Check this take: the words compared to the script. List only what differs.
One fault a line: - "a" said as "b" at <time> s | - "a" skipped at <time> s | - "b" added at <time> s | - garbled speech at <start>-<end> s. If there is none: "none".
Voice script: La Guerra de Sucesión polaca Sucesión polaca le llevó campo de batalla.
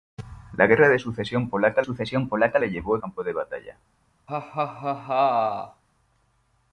none